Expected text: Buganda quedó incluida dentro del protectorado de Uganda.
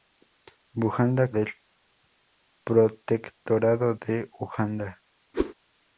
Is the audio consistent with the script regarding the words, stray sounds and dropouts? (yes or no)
no